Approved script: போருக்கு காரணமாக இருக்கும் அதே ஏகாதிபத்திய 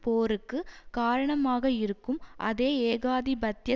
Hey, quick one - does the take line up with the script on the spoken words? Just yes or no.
yes